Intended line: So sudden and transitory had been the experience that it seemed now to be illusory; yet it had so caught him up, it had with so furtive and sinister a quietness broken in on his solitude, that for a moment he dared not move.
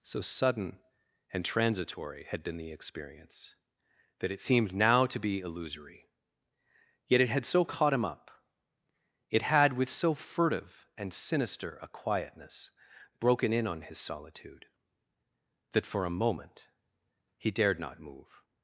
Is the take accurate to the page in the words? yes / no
yes